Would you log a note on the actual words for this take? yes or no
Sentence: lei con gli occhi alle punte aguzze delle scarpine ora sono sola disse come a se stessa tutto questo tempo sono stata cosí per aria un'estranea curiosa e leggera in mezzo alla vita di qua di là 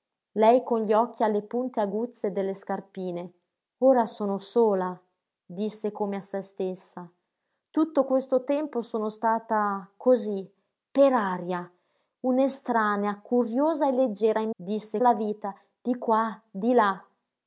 yes